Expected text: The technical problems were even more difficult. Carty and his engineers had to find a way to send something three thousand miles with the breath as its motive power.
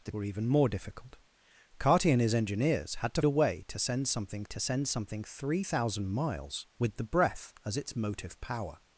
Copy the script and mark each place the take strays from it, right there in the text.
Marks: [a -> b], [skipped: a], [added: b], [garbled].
The [skipped: technical problems] were even more difficult. Carty and his engineers had to [skipped: find] a way to send something [added: to send something] three thousand miles with the breath as its motive power.